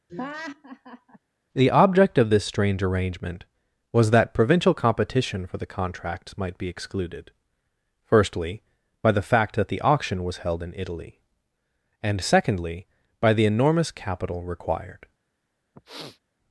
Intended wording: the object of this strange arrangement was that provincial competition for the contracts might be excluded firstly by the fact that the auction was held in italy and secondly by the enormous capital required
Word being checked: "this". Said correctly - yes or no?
yes